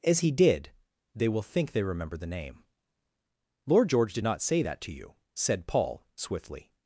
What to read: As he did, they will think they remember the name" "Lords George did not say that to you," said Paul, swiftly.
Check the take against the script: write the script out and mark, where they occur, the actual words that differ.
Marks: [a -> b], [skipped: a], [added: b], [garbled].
As he did, they will think they remember the name" ["Lords -> Lord] George did not say that to you," said Paul, swiftly.